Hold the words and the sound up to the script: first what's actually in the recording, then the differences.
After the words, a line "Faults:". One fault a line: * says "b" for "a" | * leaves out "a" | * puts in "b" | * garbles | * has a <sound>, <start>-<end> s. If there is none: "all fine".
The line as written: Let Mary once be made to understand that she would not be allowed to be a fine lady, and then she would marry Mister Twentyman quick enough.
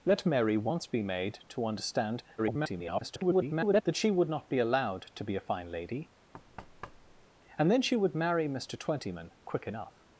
Let Mary once be made to understand [garbled] that she would not be allowed to be a fine lady, and then she would marry Mister Twentyman quick enough.
Faults:
* garbles
* has a thud, 6.3-7.3 s